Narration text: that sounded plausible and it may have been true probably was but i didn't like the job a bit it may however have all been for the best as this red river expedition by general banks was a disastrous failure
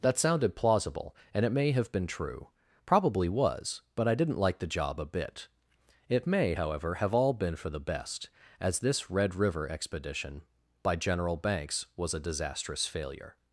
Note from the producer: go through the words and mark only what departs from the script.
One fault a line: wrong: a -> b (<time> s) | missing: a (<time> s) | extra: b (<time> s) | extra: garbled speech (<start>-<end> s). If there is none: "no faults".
no faults